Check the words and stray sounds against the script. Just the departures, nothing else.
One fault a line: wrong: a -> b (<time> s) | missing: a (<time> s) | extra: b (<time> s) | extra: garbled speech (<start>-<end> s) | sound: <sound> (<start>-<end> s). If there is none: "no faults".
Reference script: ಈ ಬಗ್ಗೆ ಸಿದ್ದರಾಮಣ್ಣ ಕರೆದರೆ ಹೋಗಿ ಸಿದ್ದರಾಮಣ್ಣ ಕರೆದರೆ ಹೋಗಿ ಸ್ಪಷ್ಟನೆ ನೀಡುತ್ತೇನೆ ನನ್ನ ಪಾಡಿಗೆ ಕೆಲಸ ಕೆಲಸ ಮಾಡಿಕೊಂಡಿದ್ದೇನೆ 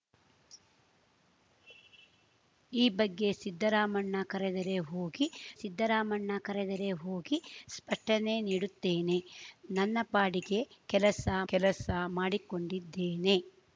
no faults